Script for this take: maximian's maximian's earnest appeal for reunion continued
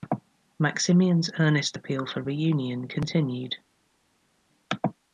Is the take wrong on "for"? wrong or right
right